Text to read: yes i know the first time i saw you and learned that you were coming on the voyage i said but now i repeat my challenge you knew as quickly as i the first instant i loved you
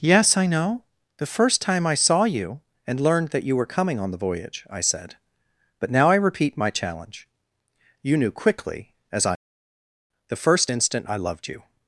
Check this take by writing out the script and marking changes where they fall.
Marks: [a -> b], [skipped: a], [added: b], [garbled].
yes i know the first time i saw you and learned that you were coming on the voyage i said but now i repeat my challenge you knew [skipped: as] quickly as i the first instant i loved you